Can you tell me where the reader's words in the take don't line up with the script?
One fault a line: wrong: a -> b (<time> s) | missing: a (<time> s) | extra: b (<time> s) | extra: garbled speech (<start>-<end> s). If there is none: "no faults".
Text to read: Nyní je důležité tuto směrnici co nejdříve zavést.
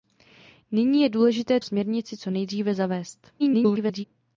missing: tuto (1.6 s)
extra: garbled speech (3.4-4.0 s)